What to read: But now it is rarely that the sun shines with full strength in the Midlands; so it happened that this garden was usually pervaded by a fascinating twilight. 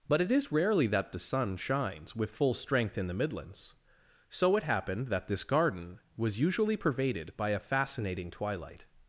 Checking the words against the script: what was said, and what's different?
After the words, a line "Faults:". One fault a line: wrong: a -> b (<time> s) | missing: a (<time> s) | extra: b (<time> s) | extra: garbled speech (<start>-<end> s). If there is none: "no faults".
But it is rarely that the sun shines with full strength in the Midlands; so it happened that this garden was usually pervaded by a fascinating twilight.
Faults:
missing: now (0.2 s)